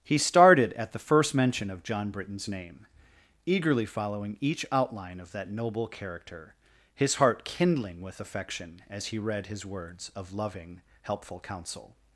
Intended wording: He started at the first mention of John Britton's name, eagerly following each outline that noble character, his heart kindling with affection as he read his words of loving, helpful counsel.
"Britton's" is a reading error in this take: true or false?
false